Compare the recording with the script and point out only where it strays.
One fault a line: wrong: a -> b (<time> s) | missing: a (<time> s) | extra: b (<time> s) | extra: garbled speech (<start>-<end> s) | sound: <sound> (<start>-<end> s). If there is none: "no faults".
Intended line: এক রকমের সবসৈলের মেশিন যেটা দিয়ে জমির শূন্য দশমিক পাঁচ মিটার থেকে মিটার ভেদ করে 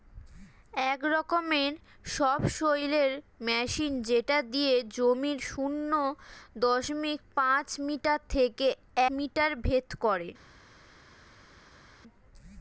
no faults